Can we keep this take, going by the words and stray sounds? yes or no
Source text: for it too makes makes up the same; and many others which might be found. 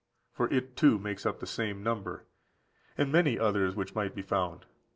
no